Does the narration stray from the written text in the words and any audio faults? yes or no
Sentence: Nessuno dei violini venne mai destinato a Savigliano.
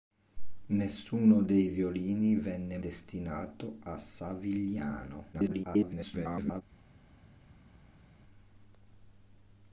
yes